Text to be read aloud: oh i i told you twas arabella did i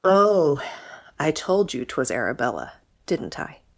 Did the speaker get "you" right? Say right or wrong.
right